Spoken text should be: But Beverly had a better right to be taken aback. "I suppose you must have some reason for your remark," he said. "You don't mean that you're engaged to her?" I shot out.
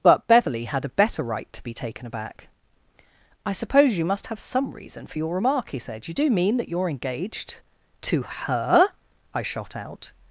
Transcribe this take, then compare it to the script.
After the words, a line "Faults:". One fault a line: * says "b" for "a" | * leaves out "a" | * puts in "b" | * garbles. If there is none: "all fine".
But Beverly had a better right to be taken aback. "I suppose you must have some reason for your remark," he said. "You do mean that you're engaged to her?" I shot out.
Faults:
* says "do" for "don't"